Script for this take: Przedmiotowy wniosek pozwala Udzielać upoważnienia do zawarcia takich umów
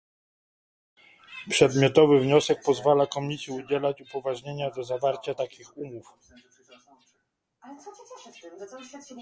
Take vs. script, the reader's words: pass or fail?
fail